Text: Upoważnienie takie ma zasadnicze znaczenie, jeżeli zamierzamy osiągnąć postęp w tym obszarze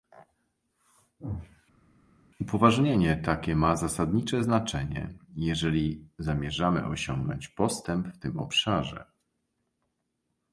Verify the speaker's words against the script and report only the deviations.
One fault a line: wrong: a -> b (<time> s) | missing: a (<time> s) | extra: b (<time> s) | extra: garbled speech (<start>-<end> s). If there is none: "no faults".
no faults